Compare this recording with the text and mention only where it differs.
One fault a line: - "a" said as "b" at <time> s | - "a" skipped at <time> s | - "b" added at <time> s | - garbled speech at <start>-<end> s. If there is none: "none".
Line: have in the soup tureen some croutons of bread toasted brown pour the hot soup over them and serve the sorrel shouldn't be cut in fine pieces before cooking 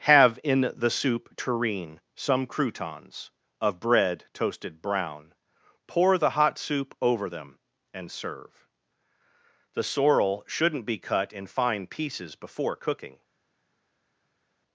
none